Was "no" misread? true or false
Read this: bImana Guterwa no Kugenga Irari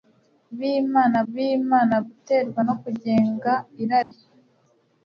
false